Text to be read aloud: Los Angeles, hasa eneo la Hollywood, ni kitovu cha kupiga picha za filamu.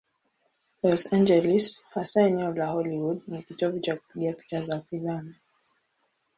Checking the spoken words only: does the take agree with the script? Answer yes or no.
yes